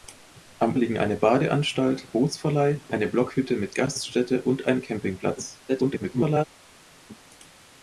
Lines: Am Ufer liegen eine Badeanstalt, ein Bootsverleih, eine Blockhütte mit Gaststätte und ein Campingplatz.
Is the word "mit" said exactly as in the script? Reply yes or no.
yes